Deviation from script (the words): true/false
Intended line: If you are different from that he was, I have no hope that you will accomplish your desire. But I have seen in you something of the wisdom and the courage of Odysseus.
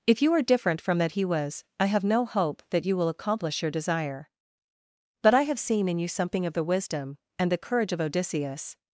false